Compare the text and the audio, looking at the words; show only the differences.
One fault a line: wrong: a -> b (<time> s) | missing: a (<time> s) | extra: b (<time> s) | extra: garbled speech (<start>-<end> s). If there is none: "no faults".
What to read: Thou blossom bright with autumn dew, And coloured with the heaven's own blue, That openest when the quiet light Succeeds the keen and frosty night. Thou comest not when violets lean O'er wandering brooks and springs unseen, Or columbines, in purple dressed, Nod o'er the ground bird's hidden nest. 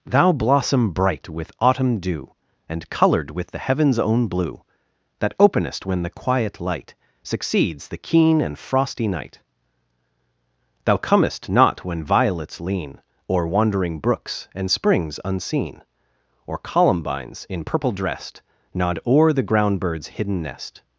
no faults